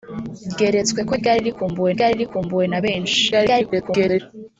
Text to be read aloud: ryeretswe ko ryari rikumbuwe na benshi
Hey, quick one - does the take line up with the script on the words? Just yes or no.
no